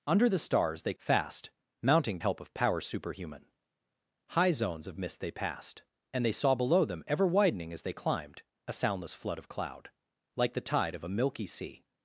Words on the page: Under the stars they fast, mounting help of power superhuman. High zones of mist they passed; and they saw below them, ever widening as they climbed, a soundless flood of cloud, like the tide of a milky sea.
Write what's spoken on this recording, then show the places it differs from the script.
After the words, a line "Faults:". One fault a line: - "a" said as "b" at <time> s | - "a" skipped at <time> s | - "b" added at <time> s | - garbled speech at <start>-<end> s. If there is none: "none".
Under the stars they fast, mounting help of power superhuman. High zones of mist they passed; and they saw below them, ever widening as they climbed, a soundless flood of cloud, like the tide of a milky sea.
Faults:
none